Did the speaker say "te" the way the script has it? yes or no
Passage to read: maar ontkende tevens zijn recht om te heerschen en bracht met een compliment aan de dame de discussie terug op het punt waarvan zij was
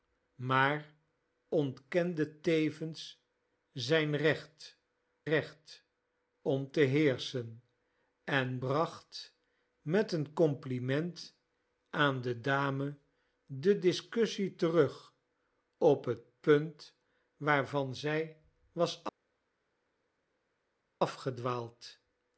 yes